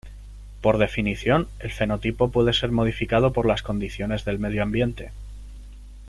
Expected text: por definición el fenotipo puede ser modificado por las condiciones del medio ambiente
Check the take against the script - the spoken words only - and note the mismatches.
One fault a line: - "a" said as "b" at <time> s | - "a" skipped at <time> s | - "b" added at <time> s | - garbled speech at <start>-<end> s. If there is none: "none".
none